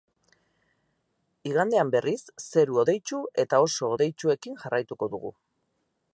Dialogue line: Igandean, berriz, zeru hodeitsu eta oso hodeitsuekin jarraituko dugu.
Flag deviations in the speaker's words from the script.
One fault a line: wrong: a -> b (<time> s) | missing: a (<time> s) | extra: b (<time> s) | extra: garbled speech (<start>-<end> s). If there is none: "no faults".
no faults